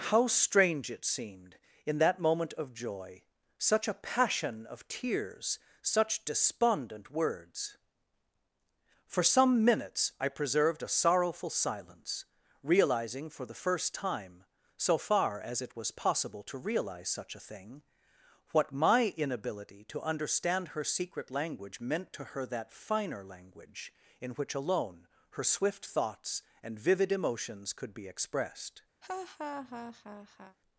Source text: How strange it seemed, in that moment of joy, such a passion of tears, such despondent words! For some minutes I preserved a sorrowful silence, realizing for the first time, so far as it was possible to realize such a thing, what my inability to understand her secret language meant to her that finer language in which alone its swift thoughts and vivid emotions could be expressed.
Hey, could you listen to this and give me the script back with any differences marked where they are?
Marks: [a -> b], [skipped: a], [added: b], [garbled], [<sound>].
How strange it seemed, in that moment of joy, such a passion of tears, such despondent words! For some minutes I preserved a sorrowful silence, realizing for the first time, so far as it was possible to realize such a thing, what my inability to understand her secret language meant to her that finer language in which alone [its -> her] swift thoughts and vivid emotions could be expressed. [laugh]